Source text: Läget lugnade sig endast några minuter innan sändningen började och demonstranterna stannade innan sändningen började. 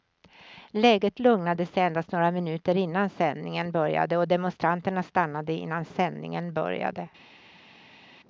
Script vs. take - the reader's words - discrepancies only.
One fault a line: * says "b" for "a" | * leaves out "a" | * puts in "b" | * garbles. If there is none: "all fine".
all fine